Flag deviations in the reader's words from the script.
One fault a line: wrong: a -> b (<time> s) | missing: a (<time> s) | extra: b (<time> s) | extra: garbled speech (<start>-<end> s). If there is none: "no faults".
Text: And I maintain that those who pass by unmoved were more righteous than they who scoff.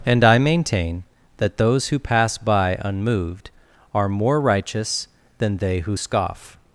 wrong: were -> are (3.9 s)